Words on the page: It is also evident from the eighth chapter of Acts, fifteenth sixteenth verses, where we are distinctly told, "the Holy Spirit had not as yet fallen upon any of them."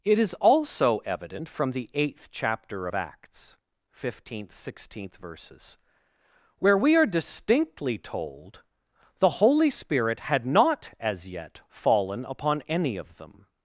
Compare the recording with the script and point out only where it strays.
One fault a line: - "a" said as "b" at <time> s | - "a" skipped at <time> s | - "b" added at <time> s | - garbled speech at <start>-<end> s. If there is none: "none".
none